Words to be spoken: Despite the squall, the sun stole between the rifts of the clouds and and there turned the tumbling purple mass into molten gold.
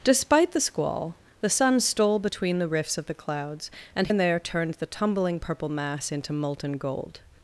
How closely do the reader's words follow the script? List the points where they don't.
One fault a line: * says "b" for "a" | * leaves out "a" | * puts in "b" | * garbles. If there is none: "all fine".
all fine